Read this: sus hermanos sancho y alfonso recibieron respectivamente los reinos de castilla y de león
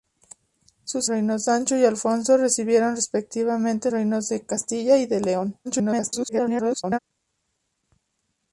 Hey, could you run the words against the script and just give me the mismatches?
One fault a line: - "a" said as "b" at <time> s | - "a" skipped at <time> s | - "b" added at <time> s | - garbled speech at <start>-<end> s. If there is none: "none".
- "hermanos" said as "reinos" at 1.1 s
- "los" skipped at 3.9 s
- garbled speech at 5.6-7.0 s